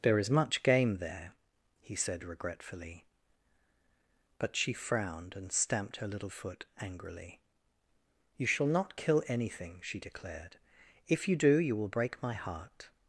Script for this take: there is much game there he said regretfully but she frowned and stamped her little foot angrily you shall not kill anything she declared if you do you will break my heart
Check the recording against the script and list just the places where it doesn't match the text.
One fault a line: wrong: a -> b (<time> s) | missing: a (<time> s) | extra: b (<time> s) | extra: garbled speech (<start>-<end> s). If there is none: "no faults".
no faults